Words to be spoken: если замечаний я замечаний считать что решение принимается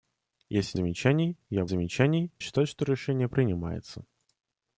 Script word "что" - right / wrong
right